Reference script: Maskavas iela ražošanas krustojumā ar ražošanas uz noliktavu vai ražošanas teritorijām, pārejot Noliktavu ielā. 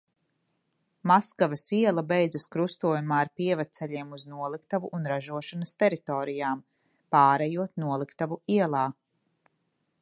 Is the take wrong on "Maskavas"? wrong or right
right